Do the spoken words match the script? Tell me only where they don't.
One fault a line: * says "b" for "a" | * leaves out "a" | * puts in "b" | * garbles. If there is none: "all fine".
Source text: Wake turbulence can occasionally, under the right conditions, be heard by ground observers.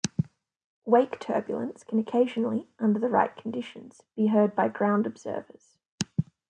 all fine